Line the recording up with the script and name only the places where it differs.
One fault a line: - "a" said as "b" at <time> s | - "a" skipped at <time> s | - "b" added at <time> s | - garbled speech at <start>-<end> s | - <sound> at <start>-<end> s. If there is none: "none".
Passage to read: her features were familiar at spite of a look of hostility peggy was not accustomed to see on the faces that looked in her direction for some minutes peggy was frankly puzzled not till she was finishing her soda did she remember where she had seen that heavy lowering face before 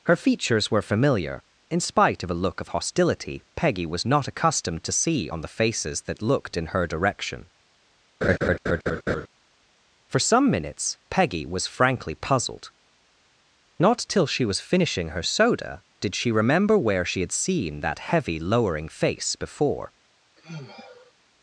- "at" said as "in" at 1.7 s
- laugh at 8.2-9.3 s
- sigh at 20.4-21.1 s